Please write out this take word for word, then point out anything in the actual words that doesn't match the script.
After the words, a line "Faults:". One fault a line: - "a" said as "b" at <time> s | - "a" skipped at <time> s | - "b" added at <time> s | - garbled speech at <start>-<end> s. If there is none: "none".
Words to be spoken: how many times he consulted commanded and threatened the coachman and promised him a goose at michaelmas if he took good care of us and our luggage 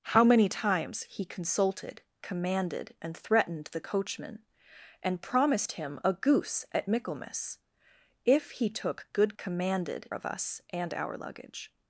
how many times he consulted commanded and threatened the coachman and promised him a goose at michaelmas if he took good commanded of us and our luggage
Faults:
- "care" said as "commanded" at 9.4 s